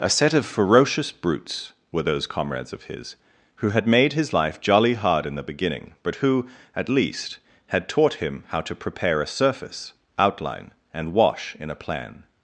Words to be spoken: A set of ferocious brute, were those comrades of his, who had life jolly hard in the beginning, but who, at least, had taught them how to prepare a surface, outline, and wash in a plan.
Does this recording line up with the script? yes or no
no